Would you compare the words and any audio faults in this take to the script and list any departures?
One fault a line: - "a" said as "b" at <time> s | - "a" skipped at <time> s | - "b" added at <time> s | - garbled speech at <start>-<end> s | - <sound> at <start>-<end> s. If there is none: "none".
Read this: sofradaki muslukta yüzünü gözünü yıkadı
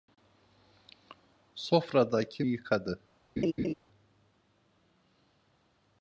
- "muslukta yüzünü gözünü" skipped at 2.4 s
- laugh at 3.4-3.7 s